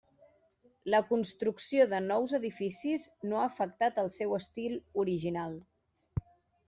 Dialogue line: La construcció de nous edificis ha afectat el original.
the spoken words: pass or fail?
fail